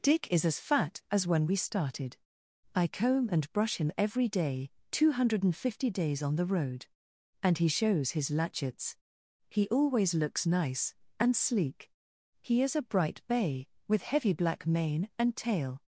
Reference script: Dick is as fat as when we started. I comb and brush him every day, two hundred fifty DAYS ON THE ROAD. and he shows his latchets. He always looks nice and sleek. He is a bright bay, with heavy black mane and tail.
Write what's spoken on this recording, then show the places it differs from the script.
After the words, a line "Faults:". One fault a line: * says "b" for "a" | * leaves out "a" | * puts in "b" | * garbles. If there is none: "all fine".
Dick is as fat as when we started. I comb and brush him every day, two hundred fifty DAYS ON THE ROAD. and he shows his latchets. He always looks nice and sleek. He is a bright bay, with heavy black mane and tail.
Faults:
all fine